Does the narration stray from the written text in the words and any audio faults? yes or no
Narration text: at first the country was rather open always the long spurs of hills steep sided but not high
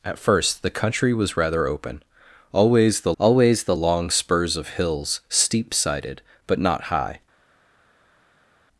yes